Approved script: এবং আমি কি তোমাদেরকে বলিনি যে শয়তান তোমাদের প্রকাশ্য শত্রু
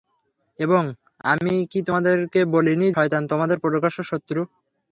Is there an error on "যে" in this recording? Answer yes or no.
yes